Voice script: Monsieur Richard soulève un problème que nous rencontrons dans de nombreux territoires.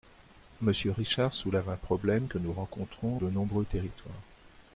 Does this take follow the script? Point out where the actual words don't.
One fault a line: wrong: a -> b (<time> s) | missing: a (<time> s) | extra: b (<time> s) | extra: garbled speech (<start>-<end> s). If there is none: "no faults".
missing: dans (3.2 s)